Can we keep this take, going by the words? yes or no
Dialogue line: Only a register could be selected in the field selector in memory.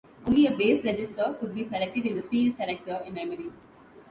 no